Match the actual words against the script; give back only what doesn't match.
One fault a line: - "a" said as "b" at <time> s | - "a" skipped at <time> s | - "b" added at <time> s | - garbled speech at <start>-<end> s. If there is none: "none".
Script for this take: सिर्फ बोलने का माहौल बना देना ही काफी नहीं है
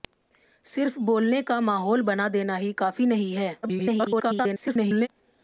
- garbled speech at 3.6-5.1 s